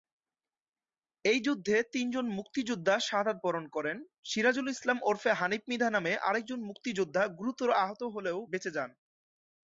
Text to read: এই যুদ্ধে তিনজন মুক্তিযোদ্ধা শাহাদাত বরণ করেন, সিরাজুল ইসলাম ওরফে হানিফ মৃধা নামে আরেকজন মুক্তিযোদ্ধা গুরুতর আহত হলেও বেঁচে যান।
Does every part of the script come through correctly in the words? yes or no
yes